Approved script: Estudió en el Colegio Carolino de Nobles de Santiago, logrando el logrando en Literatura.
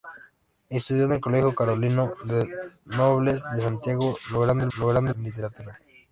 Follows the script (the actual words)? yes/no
yes